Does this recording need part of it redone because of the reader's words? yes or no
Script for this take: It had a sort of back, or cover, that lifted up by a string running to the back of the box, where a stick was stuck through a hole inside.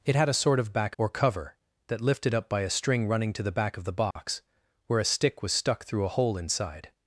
no